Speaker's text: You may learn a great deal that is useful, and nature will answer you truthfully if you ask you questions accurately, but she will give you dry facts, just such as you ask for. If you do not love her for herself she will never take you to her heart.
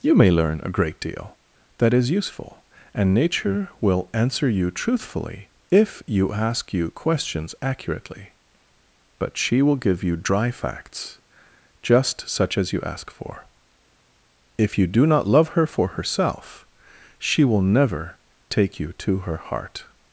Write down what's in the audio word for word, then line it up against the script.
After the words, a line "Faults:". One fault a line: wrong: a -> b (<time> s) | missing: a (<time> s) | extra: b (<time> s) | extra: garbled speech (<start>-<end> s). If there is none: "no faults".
You may learn a great deal that is useful, and nature will answer you truthfully if you ask you questions accurately, but she will give you dry facts, just such as you ask for. If you do not love her for herself she will never take you to her heart.
Faults:
no faults